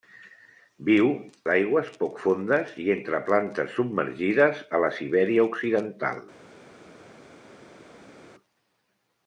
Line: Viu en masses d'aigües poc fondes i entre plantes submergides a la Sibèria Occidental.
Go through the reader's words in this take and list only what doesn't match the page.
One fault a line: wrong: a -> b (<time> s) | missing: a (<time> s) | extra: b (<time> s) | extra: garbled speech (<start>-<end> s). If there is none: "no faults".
missing: en masses (1.1 s)